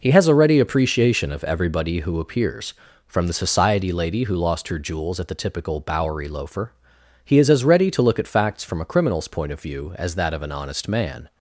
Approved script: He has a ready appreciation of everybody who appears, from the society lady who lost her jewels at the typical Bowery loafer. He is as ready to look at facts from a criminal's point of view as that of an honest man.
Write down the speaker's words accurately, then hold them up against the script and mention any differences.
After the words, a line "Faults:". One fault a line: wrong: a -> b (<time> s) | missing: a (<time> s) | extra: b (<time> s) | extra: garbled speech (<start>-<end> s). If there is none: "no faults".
He has a ready appreciation of everybody who appears, from the society lady who lost her jewels at the typical Bowery loafer. He is as ready to look at facts from a criminal's point of view as that of an honest man.
Faults:
no faults